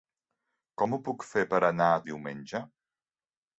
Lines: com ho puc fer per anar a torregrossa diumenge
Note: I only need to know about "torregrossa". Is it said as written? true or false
false